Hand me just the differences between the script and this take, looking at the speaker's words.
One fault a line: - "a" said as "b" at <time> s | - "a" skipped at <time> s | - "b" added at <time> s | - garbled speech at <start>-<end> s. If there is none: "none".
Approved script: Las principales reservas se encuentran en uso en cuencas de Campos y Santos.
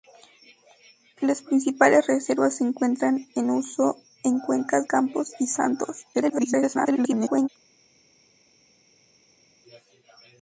- "de" skipped at 4.9 s
- garbled speech at 6.1-7.5 s